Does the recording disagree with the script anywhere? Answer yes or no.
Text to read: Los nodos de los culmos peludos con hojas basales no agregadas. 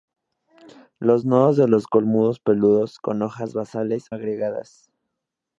yes